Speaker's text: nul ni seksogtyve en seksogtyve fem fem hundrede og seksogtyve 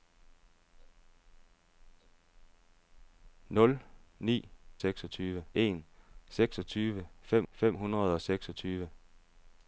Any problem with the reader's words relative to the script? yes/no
no